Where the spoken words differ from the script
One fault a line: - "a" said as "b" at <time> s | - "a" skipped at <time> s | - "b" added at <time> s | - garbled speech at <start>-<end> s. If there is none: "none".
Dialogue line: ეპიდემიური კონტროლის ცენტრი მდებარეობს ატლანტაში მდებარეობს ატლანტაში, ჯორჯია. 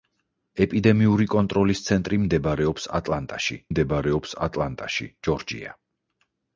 none